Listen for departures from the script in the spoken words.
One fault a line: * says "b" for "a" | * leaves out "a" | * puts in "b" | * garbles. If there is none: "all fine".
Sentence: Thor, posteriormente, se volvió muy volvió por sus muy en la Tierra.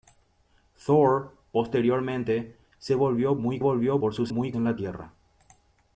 all fine